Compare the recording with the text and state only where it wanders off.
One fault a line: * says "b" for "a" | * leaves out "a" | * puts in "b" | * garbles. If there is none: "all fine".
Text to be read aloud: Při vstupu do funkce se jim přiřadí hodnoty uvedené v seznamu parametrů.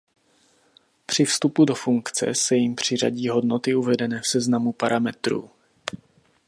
all fine